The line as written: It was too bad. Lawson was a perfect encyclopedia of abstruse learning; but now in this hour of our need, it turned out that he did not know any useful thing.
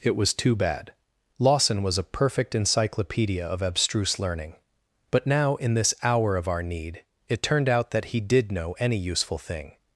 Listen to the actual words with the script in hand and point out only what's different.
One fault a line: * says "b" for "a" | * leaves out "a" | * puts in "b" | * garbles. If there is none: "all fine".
* leaves out "not"